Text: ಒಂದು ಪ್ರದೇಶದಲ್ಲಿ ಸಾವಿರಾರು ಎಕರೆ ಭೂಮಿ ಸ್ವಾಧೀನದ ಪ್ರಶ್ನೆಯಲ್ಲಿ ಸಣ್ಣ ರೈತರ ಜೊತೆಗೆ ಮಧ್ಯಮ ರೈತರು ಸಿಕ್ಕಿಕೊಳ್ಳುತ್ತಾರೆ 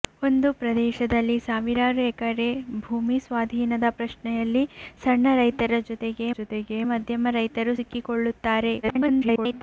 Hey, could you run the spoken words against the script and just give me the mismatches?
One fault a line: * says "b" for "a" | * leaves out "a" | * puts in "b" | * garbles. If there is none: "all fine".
* puts in "ಜೊತೆಗೆ"
* garbles